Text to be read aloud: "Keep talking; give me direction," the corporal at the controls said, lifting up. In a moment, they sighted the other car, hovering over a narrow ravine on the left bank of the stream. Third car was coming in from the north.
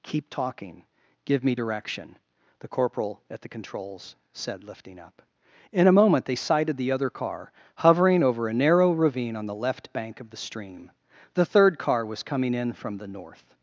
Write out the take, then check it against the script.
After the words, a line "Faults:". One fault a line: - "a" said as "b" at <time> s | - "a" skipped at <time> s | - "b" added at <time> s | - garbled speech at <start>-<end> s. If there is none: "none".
"Keep talking; give me direction," the corporal at the controls said, lifting up. In a moment, they sighted the other car, hovering over a narrow ravine on the left bank of the stream. The third car was coming in from the north.
Faults:
- "The" added at 11.3 s